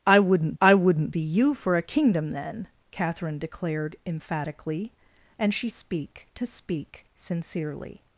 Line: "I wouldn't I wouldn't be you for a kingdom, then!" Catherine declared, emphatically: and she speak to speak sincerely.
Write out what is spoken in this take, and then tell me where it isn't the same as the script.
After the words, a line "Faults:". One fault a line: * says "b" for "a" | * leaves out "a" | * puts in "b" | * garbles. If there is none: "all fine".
"I wouldn't I wouldn't be you for a kingdom, then!" Catherine declared, emphatically: and she speak to speak sincerely.
Faults:
all fine